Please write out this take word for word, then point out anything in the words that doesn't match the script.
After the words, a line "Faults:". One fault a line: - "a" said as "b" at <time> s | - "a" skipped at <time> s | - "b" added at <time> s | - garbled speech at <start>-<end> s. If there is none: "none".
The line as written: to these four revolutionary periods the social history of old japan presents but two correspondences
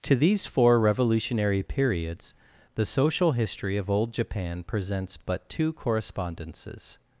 to these four revolutionary periods the social history of old japan presents but two correspondences
Faults:
none